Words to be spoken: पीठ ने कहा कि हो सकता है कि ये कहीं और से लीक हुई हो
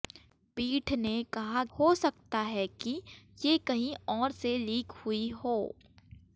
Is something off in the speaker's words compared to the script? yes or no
yes